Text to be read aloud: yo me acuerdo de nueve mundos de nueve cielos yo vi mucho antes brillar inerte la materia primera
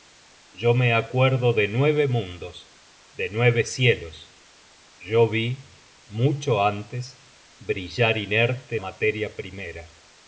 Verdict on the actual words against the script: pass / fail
fail